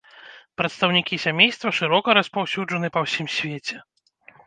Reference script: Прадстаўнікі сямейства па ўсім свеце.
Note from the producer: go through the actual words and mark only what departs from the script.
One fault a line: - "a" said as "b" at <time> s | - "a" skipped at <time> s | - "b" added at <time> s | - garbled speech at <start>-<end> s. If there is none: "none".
- "шырока распаўсюджаны" added at 1.8 s